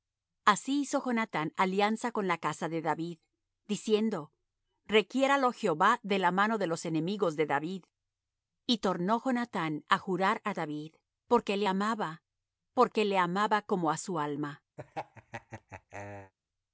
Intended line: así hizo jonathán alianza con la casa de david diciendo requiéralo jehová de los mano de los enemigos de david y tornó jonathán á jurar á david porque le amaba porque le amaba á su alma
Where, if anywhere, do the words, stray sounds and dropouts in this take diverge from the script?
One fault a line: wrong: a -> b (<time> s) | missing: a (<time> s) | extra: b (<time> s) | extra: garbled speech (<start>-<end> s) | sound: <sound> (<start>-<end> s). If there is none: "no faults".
wrong: los -> la (6.2 s)
extra: como (13.6 s)
sound: laugh (14.8-16.3 s)